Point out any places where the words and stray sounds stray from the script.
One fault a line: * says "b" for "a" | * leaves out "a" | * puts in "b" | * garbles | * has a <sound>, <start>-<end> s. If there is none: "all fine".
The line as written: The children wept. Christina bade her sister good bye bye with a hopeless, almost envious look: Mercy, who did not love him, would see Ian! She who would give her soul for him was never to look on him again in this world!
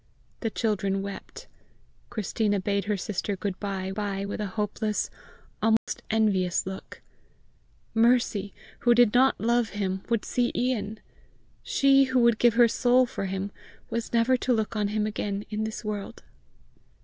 * has a dropout, 5.8-5.9 s